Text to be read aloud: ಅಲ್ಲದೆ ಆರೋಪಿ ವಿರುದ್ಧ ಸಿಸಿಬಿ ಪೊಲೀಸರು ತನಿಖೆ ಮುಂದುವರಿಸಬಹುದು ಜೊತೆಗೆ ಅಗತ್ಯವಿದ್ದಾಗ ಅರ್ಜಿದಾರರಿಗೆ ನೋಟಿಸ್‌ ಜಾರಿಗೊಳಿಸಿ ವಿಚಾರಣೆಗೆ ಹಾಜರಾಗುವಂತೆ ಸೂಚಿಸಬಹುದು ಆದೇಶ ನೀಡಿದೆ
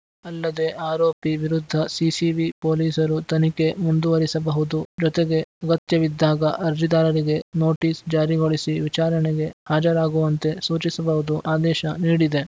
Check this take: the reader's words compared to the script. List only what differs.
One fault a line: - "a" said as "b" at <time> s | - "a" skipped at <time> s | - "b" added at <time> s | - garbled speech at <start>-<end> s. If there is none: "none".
none